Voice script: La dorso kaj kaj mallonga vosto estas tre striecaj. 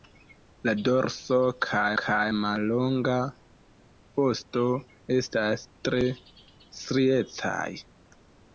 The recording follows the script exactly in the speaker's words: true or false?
true